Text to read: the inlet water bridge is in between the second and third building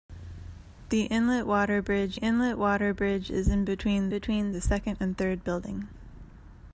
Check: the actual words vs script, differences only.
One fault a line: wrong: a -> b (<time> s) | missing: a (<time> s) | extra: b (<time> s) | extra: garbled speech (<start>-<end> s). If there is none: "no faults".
extra: inlet water bridge (2.1 s)
extra: between (4.1 s)